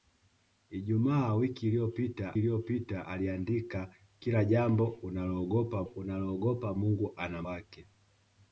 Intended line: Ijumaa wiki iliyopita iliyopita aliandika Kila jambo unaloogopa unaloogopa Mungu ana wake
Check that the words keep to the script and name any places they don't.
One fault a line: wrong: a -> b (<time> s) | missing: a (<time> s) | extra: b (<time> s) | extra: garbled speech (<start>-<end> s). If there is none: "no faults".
no faults